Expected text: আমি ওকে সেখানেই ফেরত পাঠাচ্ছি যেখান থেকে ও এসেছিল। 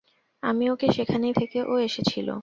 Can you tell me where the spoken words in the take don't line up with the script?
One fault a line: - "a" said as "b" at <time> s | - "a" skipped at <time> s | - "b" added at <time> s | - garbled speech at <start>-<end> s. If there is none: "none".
- "ফেরত পাঠাচ্ছি যেখান" skipped at 1.3 s